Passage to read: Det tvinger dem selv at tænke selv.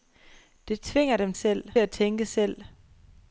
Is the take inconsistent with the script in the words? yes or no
no